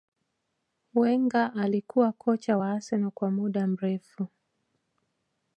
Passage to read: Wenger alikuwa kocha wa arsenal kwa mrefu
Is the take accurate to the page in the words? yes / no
no